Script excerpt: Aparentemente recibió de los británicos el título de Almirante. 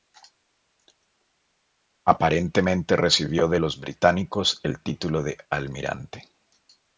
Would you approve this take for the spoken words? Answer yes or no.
yes